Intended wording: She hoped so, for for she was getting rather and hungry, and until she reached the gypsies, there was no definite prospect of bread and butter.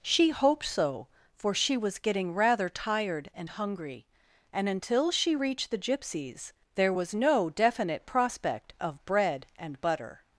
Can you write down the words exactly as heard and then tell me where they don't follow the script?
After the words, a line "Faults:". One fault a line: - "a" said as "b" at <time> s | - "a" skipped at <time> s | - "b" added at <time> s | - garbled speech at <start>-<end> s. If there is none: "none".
She hoped so, for she was getting rather tired and hungry, and until she reached the gypsies, there was no definite prospect of bread and butter.
Faults:
- "for" skipped at 1.5 s
- "tired" added at 2.7 s